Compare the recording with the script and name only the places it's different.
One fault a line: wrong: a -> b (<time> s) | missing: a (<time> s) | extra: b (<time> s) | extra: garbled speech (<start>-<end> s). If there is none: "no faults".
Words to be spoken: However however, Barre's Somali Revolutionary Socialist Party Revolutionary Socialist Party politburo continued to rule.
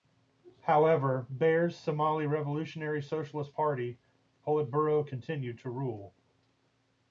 missing: however (1.3 s)
missing: Revolutionary Socialist Party (4.0 s)